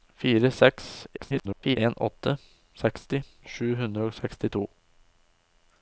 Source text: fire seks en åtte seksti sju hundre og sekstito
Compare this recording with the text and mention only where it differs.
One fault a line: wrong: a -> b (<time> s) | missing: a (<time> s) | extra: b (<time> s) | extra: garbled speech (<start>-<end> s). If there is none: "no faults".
extra: garbled speech (1.2-1.8 s)